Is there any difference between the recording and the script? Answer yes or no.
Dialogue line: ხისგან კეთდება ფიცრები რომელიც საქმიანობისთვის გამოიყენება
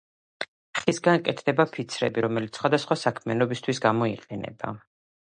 yes